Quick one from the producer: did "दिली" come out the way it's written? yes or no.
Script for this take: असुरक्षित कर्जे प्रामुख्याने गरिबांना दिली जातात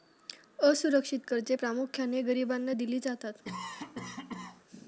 yes